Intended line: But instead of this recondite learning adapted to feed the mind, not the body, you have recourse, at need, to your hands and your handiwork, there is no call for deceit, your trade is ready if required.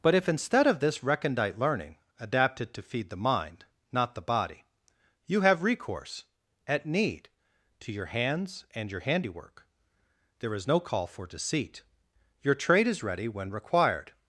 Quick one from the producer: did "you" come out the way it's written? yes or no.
yes